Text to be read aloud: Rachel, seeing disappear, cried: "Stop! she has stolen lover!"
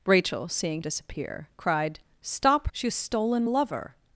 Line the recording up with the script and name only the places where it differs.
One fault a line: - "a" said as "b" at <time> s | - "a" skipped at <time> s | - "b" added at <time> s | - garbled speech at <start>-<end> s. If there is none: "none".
none